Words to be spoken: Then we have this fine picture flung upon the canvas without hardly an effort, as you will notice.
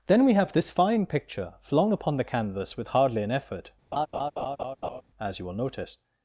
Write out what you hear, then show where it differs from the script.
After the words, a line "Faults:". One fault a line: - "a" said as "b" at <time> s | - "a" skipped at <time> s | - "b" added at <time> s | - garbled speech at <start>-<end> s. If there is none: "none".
Then we have this fine picture flung upon the canvas with hardly an effort, as you will notice.
Faults:
- "without" said as "with" at 2.8 s